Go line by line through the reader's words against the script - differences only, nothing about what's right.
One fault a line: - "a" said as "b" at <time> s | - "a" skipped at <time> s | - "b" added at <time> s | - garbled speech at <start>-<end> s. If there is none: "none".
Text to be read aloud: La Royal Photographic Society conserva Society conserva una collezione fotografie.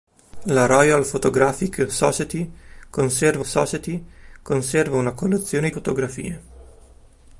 none